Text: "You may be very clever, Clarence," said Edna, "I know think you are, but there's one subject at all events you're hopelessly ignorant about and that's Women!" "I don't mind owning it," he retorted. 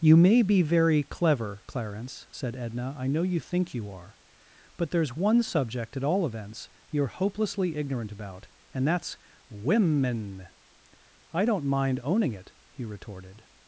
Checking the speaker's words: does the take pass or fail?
fail